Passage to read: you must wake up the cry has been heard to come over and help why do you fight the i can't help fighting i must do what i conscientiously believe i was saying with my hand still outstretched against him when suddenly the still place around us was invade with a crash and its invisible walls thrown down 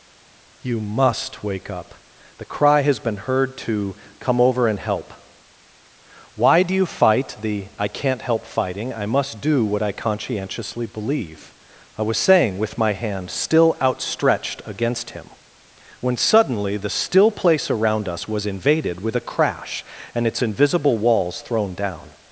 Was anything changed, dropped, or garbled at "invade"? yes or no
yes